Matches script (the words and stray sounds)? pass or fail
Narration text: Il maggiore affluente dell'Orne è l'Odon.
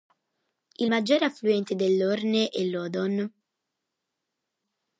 pass